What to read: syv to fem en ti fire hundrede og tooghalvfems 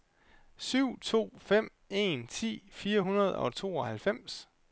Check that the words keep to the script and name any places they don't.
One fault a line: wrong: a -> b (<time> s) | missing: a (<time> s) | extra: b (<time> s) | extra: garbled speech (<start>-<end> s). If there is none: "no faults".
no faults